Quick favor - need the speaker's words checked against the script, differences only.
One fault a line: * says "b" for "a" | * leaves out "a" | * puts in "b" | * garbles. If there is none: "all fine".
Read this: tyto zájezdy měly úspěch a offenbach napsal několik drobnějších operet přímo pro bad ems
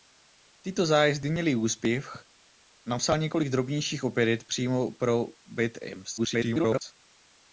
* leaves out "a offenbach"
* garbles